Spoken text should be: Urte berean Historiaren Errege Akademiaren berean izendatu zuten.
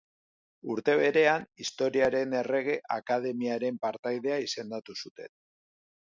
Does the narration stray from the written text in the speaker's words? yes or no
yes